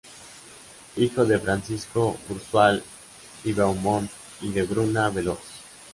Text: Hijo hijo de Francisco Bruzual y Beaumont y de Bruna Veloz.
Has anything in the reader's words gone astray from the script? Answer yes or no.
yes